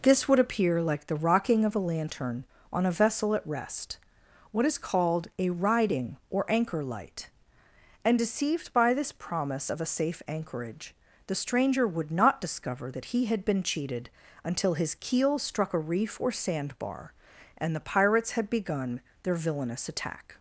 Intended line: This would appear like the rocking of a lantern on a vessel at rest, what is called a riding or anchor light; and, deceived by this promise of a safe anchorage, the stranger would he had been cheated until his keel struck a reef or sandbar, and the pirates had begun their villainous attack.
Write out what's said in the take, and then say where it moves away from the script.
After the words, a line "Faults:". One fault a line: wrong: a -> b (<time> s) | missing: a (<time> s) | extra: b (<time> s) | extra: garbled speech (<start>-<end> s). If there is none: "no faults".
This would appear like the rocking of a lantern on a vessel at rest, what is called a riding or anchor light; and, deceived by this promise of a safe anchorage, the stranger would not discover that he had been cheated until his keel struck a reef or sandbar, and the pirates had begun their villainous attack.
Faults:
extra: not discover that (12.1 s)